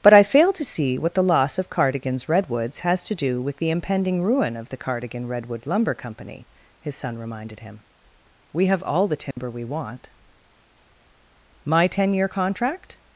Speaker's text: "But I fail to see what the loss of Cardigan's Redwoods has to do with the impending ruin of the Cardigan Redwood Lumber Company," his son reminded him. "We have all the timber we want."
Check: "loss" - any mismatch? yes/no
no